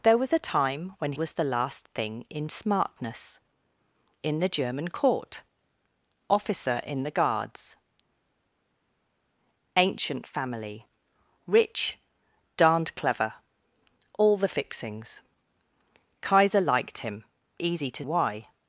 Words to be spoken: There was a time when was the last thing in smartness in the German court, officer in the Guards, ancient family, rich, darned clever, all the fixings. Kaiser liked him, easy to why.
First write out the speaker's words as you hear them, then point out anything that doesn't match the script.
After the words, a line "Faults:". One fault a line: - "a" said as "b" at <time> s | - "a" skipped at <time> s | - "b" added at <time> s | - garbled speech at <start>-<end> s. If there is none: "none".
There was a time when was the last thing in smartness in the German court, officer in the Guards, ancient family, rich, darned clever, all the fixings. Kaiser liked him, easy to why.
Faults:
none